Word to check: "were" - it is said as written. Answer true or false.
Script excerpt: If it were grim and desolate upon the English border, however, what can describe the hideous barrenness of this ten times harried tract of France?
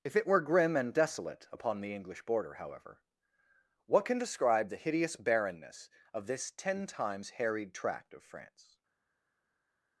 true